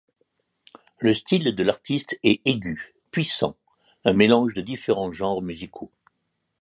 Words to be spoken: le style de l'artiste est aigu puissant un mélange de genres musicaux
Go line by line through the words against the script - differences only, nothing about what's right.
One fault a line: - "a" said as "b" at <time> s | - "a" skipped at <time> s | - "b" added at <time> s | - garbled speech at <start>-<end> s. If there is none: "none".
- "différents" added at 4.6 s